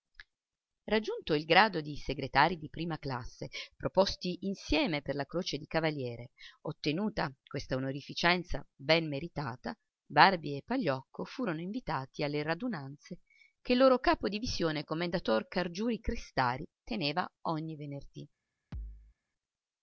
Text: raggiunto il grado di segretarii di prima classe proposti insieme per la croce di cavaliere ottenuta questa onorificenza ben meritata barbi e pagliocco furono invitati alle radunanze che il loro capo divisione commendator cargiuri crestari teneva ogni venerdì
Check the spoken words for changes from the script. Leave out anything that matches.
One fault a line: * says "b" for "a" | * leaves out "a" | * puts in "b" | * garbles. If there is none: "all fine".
all fine